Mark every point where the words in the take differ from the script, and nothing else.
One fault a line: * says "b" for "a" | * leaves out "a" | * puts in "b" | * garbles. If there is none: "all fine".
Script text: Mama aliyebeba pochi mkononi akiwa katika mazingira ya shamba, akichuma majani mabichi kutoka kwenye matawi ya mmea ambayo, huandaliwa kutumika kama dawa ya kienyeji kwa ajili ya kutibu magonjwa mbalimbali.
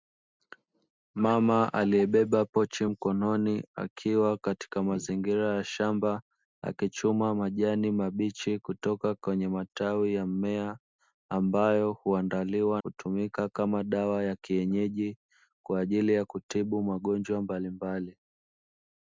all fine